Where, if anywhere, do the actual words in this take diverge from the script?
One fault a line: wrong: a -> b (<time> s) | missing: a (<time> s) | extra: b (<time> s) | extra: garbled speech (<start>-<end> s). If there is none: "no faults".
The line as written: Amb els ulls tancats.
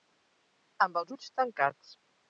no faults